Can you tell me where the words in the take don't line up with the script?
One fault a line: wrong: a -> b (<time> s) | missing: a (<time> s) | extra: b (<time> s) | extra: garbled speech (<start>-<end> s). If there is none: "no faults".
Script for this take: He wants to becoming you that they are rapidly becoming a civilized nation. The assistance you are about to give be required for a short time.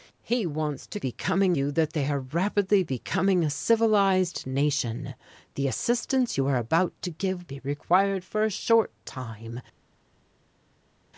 no faults